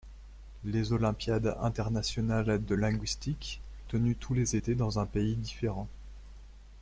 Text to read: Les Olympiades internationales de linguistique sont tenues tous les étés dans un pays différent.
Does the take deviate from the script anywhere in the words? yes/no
yes